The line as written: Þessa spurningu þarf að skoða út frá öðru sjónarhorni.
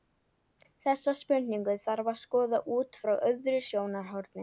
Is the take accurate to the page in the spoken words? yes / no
yes